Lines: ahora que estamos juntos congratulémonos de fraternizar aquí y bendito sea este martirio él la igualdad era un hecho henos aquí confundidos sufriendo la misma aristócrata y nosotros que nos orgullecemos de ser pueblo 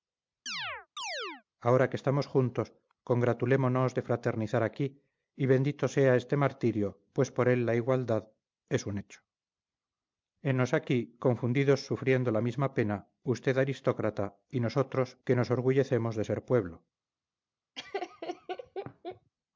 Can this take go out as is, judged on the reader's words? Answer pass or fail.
fail